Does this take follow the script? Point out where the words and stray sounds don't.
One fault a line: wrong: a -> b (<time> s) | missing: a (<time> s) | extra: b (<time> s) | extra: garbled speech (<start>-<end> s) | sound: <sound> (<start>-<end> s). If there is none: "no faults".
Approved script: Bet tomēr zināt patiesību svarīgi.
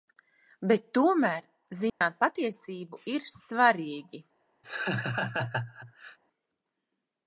sound: dropout (1.9-2.0 s)
extra: ir (3.1 s)
sound: laugh (4.6-6.2 s)